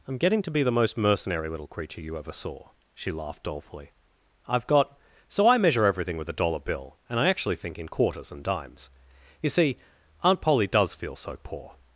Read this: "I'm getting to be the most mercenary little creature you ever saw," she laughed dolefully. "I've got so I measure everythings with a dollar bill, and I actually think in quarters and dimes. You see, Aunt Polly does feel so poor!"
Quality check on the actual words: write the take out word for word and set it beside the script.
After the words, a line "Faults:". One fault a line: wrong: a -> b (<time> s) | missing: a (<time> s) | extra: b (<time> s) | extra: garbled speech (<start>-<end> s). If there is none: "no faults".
"I'm getting to be the most mercenary little creature you ever saw," she laughed dolefully. "I've got so I measure everything with a dollar bill, and I actually think in quarters and dimes. You see, Aunt Polly does feel so poor!"
Faults:
wrong: everythings -> everything (5.8 s)